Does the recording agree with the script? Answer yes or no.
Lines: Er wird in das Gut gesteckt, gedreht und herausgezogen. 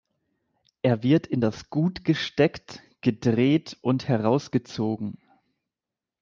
yes